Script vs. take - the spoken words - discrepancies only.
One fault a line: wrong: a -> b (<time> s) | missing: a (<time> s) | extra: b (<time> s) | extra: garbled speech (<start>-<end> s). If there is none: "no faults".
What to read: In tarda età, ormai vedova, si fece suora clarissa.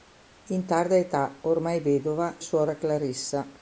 missing: si fece (2.4 s)